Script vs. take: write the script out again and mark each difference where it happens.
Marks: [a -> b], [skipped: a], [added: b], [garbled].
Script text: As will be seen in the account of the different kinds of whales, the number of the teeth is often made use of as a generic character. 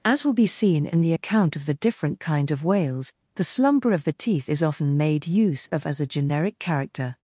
As will be seen in the account of the different [kinds -> kind] of whales, the [number -> slumber] of the teeth is often made use of as a generic character.